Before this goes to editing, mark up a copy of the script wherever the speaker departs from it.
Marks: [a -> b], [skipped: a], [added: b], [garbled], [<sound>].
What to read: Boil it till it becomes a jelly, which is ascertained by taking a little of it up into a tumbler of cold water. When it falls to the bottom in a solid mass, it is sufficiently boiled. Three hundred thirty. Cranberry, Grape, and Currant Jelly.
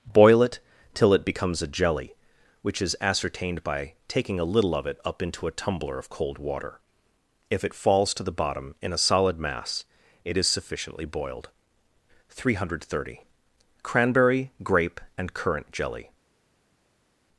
Boil it till it becomes a jelly, which is ascertained by taking a little of it up into a tumbler of cold water. [When -> If] it falls to the bottom in a solid mass, it is sufficiently boiled. Three hundred thirty. Cranberry, Grape, and Currant Jelly.